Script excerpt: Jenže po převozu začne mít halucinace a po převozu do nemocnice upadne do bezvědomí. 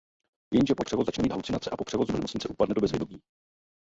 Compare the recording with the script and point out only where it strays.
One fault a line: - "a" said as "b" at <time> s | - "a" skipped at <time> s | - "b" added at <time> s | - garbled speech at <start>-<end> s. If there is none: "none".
none